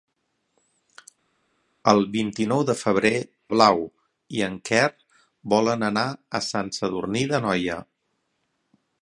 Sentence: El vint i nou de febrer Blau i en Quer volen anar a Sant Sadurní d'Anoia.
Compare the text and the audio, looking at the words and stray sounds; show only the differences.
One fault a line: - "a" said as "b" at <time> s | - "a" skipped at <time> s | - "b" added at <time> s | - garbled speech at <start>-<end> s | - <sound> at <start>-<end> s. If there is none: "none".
none